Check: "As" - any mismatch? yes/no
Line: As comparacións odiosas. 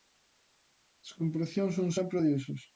no